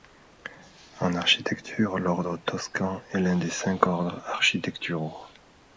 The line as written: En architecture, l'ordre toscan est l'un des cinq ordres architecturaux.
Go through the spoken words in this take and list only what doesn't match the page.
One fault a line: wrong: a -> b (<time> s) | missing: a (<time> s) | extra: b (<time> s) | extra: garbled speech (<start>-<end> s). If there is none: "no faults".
no faults